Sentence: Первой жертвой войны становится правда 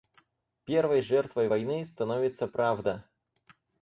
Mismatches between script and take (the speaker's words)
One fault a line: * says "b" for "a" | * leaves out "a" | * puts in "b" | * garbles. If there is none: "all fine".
all fine